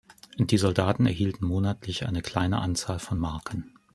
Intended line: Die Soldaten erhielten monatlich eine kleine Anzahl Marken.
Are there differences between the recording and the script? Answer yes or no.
yes